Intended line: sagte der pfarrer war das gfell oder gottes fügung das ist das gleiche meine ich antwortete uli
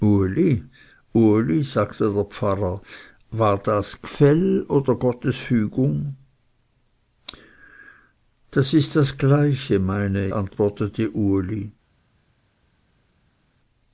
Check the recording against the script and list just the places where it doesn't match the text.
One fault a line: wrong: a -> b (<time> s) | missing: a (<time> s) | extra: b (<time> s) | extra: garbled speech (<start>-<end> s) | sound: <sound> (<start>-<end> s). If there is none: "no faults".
missing: ich (10.3 s)